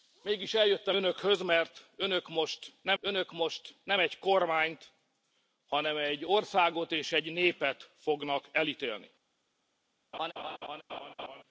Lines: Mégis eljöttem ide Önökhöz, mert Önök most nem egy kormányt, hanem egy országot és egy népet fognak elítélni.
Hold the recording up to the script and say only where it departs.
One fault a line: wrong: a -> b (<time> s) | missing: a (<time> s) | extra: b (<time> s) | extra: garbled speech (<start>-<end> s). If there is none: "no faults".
missing: ide (1.0 s)
extra: Önök most nem (3.0 s)